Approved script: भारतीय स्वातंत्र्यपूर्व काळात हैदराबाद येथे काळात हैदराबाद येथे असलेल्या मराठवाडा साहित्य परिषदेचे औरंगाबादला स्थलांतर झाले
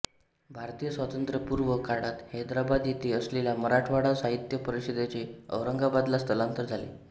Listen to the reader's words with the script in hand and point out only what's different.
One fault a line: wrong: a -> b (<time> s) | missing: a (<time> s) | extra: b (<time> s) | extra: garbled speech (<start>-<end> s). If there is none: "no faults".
missing: काळात हैदराबाद येथे (3.1 s)